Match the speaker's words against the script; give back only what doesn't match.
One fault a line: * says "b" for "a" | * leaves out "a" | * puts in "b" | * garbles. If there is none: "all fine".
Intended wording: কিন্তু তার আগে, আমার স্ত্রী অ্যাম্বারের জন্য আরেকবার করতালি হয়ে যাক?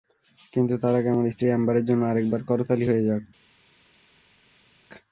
all fine